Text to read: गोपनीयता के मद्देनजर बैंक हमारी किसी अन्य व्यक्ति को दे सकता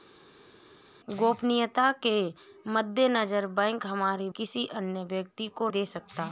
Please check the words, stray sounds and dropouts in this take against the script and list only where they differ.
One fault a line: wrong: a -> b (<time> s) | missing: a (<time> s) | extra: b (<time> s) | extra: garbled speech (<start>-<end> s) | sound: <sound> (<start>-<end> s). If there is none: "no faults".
no faults